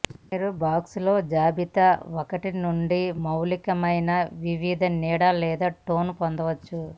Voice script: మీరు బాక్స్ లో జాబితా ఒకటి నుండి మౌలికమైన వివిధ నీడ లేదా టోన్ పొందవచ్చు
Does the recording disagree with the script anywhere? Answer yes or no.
no